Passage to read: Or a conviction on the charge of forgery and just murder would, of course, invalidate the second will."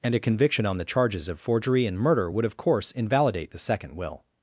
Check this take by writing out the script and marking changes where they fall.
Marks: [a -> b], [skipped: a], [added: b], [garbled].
[Or -> And] a conviction on the [charge -> charges] of forgery and [skipped: just] murder would, of course, invalidate the second will."